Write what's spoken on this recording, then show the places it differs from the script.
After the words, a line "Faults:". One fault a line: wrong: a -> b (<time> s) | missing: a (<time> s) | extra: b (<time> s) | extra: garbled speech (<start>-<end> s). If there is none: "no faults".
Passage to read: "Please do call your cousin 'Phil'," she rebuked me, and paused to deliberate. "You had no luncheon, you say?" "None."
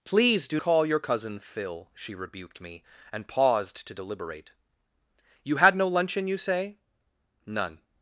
"Please do call your cousin 'Phil'," she rebuked me, and paused to deliberate. "You had no luncheon, you say?" "None."
Faults:
no faults